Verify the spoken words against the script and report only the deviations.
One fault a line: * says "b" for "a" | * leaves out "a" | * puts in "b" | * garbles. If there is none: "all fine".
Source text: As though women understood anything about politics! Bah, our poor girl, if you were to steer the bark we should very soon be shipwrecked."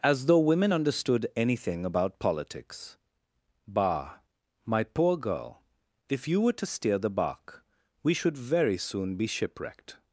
* says "my" for "our"